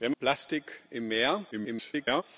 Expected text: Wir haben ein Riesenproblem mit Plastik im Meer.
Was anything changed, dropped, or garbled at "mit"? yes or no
yes